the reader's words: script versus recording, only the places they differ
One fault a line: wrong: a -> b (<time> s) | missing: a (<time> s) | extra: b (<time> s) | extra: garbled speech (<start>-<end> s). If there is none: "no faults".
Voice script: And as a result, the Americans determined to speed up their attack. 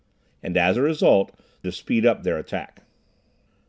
missing: the Americans determined (1.4 s)